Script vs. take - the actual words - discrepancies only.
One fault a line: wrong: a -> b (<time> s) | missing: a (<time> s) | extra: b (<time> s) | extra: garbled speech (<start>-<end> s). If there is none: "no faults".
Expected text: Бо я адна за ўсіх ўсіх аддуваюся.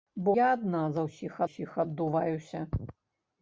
no faults